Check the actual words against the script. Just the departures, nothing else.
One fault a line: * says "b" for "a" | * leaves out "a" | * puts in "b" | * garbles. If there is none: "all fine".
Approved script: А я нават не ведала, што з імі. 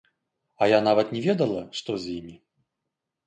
all fine